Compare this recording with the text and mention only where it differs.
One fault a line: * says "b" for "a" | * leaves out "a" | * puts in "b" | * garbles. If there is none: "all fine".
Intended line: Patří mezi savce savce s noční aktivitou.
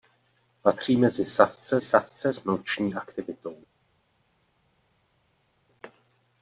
all fine